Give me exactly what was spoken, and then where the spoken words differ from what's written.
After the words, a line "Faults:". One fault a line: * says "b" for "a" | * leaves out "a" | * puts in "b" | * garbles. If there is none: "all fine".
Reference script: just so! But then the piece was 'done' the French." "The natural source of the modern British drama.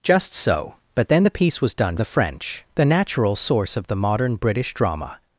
just so! But then the piece was 'done' the French." "The natural source of the modern British drama.
Faults:
all fine